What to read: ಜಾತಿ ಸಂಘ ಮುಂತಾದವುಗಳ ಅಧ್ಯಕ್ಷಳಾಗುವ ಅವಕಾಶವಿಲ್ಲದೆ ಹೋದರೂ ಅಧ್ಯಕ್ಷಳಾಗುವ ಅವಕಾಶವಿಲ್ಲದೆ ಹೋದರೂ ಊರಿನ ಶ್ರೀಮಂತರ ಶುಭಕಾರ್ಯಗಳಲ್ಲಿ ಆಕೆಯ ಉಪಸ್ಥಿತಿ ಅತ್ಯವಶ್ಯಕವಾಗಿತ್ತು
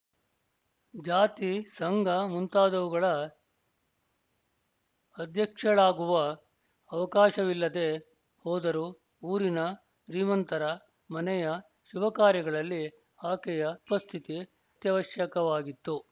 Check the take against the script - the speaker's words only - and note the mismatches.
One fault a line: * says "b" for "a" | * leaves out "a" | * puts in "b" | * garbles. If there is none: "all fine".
* leaves out "ಅಧ್ಯಕ್ಷಳಾಗುವ ಅವಕಾಶವಿಲ್ಲದೆ ಹೋದರೂ"
* puts in "ಮನೆಯ"